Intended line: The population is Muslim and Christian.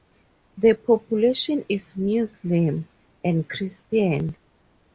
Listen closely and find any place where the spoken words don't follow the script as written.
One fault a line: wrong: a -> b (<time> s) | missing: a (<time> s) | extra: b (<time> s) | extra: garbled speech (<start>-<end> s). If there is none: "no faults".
no faults